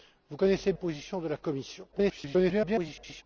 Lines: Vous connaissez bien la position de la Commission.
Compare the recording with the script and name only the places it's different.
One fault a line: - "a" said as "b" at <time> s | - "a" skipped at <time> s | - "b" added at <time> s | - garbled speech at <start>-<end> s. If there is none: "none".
- "bien la" skipped at 0.7 s
- garbled speech at 1.9-3.2 s